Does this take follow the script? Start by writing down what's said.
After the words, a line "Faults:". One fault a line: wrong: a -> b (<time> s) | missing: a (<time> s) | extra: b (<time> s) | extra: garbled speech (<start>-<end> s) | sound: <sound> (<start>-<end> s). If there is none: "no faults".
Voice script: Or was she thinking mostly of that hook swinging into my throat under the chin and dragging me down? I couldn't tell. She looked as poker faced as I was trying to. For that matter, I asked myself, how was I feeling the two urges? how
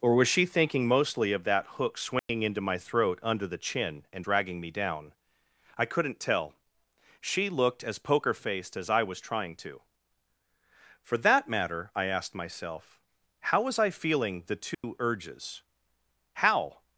Or was she thinking mostly of that hook swinging into my throat under the chin and dragging me down? I couldn't tell. She looked as poker faced as I was trying to. For that matter, I asked myself, how was I feeling the two urges? how
Faults:
sound: dropout (2.2-2.3 s)
sound: dropout (14.7-14.8 s)